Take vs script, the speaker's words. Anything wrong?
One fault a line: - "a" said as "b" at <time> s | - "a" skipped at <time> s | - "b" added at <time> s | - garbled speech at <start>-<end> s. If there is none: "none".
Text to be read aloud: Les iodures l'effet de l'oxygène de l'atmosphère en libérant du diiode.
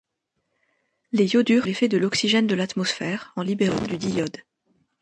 none